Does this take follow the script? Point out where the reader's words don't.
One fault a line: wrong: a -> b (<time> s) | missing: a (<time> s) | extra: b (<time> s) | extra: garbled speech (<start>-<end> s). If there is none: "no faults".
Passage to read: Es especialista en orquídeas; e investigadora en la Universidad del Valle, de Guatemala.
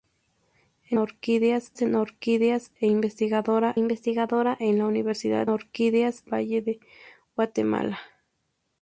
wrong: especialista -> orquídeas (1.0 s)
extra: investigadora (3.7 s)
wrong: del -> orquídeas (5.5 s)